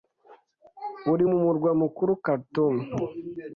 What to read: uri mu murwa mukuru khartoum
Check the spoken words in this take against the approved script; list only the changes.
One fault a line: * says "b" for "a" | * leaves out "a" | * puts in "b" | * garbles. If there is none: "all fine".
all fine